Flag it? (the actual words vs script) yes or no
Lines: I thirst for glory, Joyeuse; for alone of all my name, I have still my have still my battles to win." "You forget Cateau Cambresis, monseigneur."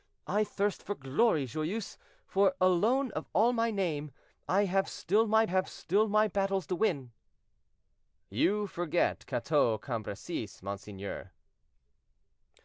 no